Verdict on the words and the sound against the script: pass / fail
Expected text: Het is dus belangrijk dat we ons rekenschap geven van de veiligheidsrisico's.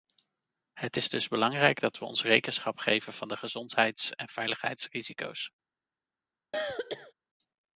fail